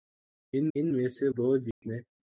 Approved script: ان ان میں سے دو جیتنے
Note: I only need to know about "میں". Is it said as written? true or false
true